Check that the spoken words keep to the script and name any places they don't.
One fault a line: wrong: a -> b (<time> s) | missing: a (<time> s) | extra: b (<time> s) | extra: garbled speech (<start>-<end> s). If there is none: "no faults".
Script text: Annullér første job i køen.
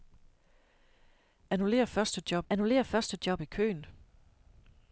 extra: annullér første job (2.5 s)